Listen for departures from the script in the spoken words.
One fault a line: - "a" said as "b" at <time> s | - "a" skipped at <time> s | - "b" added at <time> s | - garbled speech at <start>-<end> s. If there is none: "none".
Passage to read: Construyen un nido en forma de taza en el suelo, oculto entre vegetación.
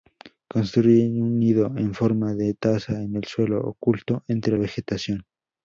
none